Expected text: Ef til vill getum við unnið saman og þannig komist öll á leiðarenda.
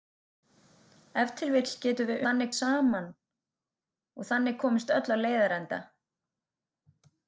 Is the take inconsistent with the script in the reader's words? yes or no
yes